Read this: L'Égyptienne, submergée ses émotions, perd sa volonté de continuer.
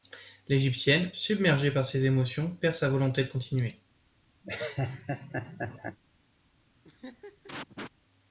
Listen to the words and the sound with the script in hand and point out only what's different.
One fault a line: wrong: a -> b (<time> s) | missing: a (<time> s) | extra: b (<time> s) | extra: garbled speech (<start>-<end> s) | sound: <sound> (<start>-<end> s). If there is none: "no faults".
extra: par (1.7 s)
sound: laugh (4.4-6.0 s)
sound: laugh (6.8-7.9 s)